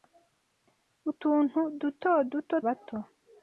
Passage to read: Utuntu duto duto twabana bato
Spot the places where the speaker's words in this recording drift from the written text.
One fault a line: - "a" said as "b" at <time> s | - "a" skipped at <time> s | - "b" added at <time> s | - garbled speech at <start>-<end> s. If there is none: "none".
- "twabana" skipped at 2.5 s